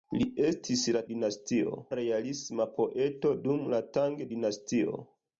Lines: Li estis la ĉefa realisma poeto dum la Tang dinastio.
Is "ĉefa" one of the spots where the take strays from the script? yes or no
yes